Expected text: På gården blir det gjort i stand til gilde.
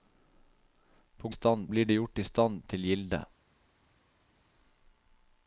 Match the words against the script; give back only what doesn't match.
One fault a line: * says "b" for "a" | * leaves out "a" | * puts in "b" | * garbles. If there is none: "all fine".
* says "stand" for "gården"